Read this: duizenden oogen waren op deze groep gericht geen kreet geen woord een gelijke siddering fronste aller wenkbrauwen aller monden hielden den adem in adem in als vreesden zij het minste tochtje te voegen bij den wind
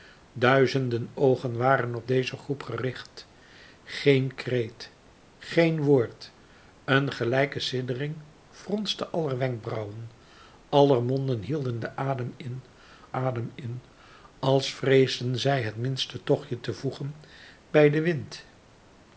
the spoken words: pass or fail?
pass